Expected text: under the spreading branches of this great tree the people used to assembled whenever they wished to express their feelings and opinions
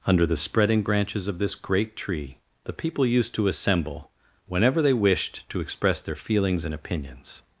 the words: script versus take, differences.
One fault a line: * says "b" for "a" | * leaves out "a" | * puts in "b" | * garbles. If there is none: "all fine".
* says "assemble" for "assembled"